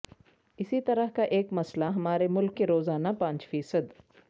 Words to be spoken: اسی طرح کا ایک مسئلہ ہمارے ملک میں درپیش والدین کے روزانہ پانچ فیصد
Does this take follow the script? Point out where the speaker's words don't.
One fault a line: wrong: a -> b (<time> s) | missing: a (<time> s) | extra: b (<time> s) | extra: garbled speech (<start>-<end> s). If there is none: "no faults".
missing: میں درپیش والدین (2.6 s)